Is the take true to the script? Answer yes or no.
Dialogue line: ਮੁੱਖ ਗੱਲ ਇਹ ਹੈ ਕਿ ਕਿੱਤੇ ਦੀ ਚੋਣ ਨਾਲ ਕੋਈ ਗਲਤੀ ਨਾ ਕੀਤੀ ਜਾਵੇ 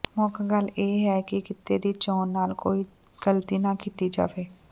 yes